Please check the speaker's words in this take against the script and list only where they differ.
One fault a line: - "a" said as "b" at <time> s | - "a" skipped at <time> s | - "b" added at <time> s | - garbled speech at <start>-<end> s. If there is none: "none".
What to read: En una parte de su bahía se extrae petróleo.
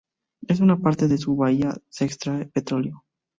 none